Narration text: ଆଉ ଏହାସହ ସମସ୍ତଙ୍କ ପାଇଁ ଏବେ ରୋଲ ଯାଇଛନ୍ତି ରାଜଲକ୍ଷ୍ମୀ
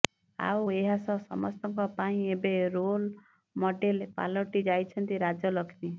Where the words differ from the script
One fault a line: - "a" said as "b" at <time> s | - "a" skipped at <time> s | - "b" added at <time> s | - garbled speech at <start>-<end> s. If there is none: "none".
- "ମଡେଲ ପାଲଟି" added at 3.6 s